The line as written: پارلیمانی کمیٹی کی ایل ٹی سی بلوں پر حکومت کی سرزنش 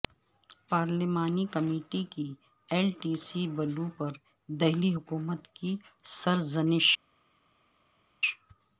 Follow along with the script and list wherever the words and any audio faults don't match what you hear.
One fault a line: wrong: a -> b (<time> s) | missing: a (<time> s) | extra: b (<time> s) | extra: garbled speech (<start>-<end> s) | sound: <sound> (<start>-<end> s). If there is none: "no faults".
extra: دہلی (4.5 s)